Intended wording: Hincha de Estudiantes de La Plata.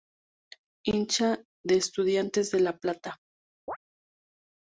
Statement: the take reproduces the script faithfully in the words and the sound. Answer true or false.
false